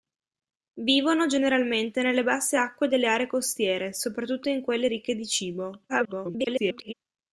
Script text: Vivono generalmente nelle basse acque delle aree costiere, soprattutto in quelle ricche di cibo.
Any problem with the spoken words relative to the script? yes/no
yes